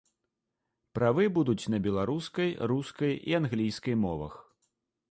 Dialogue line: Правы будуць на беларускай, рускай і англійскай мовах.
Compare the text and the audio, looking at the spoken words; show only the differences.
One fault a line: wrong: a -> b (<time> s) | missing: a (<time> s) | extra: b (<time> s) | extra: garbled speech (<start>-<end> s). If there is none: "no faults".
no faults